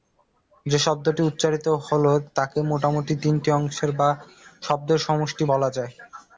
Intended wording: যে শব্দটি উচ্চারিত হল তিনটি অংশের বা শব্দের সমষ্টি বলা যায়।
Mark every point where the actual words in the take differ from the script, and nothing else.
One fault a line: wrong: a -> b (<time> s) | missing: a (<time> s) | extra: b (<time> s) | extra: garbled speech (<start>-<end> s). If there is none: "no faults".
extra: তাকে মোটামুটি (2.4 s)